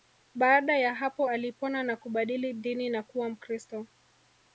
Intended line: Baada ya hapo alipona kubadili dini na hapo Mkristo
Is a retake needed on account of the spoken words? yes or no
yes